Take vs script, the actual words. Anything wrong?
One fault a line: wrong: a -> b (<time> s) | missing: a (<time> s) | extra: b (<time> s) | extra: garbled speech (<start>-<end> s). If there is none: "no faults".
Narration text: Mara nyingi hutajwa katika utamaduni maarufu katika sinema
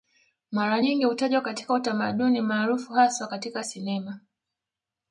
extra: haswa (2.9 s)